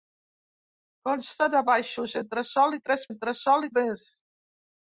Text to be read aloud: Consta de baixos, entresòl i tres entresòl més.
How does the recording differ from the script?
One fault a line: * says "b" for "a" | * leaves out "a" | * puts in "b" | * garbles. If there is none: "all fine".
all fine